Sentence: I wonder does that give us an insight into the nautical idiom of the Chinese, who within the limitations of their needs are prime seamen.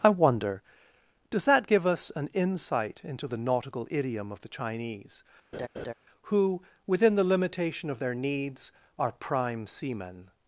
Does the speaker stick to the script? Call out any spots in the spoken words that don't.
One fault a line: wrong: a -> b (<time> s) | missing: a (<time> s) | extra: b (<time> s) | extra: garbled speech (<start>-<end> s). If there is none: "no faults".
wrong: limitations -> limitation (7.2 s)